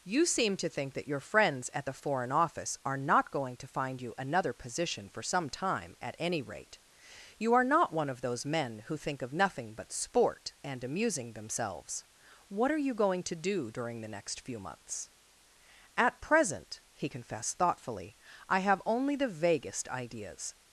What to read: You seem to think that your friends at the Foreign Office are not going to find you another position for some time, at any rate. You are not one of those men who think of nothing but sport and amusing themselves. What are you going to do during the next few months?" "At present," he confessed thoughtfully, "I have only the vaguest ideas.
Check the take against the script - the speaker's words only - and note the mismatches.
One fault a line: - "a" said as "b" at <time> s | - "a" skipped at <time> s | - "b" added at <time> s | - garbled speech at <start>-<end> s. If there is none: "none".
none